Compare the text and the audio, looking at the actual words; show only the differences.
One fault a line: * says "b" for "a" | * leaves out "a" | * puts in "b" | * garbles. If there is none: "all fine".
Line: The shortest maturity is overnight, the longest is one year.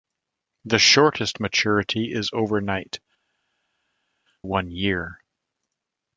* leaves out "the longest is"